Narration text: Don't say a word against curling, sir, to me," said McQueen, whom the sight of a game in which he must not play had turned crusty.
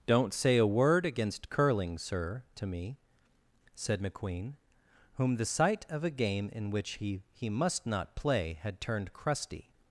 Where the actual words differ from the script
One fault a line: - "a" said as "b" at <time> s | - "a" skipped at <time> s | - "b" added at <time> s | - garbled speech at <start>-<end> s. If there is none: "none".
- "he" added at 7.3 s